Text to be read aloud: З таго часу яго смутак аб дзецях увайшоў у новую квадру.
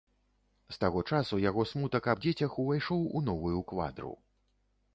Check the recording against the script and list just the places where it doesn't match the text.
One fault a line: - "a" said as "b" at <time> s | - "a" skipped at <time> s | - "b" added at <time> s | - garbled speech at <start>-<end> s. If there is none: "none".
none